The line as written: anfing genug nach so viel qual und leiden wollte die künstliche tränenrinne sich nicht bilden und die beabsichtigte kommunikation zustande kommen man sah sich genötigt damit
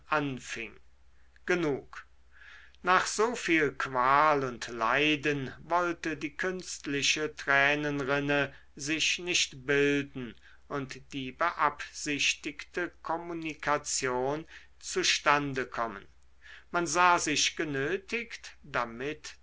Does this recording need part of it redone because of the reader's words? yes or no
no